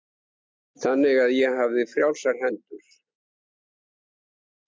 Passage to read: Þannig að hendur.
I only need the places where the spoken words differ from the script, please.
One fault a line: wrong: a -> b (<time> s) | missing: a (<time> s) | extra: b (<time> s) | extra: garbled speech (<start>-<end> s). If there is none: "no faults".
extra: ég hafði frjálsar (1.3 s)